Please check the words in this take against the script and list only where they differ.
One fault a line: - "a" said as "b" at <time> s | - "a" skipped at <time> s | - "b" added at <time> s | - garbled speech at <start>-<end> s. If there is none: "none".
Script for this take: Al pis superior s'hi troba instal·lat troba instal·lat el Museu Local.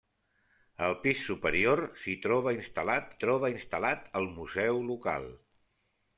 none